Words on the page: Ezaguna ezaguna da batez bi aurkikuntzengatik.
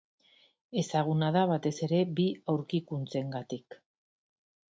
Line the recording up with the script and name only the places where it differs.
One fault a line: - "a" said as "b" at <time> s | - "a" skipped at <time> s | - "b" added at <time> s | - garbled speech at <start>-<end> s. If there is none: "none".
- "ezaguna" skipped at 1.3 s
- "ere" added at 1.9 s